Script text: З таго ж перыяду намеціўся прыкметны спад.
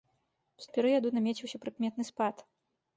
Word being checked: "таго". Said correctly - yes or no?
no